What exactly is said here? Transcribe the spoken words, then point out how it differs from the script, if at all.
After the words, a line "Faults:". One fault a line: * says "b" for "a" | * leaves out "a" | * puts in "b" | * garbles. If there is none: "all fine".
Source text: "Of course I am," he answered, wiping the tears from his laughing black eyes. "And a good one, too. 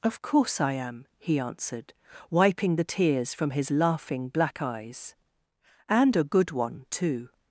"Of course I am," he answered, wiping the tears from his laughing black eyes. "And a good one, too.
Faults:
all fine